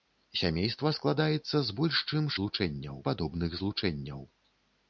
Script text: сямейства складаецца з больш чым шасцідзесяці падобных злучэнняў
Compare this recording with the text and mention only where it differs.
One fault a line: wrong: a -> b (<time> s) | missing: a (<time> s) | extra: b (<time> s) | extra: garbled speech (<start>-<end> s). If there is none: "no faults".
wrong: шасцідзесяці -> злучэнняў (2.4 s)